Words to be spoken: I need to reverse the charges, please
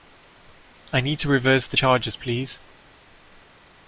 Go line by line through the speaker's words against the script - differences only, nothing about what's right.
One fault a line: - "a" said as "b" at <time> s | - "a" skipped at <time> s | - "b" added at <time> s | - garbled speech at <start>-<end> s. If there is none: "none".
none